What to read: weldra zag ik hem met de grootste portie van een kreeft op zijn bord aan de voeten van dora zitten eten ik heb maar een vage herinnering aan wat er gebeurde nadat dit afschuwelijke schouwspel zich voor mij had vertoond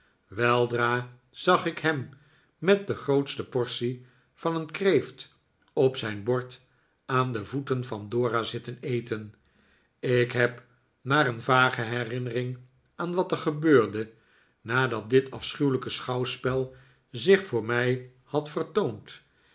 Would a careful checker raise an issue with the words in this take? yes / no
no